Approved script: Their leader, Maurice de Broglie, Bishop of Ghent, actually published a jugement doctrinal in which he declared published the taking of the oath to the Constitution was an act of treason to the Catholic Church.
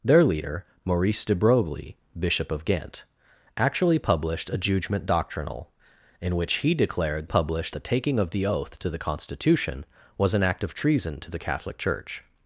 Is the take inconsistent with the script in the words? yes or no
no